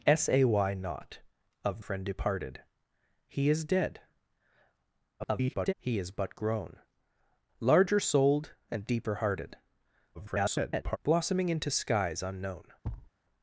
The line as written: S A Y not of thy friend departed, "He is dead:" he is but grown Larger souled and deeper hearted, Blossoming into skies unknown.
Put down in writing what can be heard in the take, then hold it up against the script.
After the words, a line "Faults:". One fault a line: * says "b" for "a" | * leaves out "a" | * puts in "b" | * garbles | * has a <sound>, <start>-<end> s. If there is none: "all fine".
S A Y not of friend departed, "He is dead:" [garbled] he is but grown Larger souled and deeper hearted, [garbled] Blossoming into skies unknown.
Faults:
* leaves out "thy"
* garbles
* garbles
* has a thud, 12.8-13.1 s